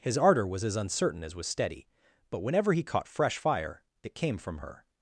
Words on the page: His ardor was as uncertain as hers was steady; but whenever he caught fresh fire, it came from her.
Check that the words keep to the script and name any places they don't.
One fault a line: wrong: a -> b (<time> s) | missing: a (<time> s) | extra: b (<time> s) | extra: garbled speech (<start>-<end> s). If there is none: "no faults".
missing: hers (1.4 s)